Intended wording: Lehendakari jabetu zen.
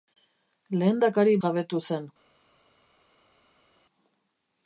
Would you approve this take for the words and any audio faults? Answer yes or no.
yes